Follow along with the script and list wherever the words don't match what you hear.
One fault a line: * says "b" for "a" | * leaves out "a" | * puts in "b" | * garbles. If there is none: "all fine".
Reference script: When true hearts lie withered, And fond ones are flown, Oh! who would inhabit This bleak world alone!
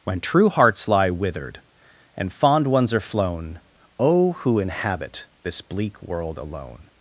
* leaves out "would"